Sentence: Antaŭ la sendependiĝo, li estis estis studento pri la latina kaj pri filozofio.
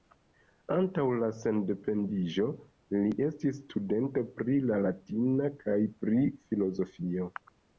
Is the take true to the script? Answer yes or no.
no